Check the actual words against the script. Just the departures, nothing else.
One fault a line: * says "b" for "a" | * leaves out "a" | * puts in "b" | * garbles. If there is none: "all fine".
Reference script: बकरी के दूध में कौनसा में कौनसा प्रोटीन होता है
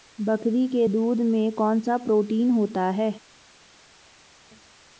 * leaves out "में कौनसा"